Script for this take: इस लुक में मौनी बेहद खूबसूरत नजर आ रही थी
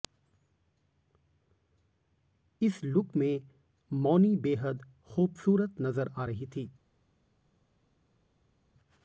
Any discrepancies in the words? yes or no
no